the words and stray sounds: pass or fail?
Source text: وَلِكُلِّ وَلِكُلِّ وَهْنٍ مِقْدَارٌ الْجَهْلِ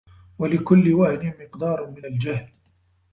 fail